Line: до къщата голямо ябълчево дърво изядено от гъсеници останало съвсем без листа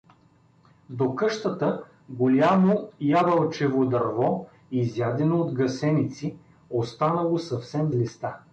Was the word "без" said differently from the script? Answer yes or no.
yes